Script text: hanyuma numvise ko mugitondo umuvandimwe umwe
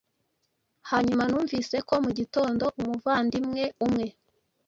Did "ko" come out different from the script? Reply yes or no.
no